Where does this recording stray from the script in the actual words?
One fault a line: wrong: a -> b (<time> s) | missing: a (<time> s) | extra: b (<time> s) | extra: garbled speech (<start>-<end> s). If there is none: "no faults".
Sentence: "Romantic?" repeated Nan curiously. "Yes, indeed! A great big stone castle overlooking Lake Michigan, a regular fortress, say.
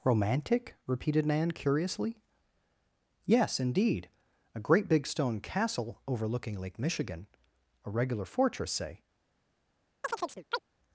no faults